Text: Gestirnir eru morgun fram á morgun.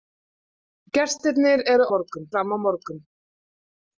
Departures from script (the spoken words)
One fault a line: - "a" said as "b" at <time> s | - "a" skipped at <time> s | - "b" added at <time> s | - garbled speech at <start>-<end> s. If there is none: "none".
none